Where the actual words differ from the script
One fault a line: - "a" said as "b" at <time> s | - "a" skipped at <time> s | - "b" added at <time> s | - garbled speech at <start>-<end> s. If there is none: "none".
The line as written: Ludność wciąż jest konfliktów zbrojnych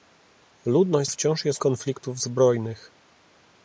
none